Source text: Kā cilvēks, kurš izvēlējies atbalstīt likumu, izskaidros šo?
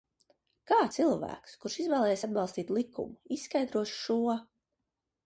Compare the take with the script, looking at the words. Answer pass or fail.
pass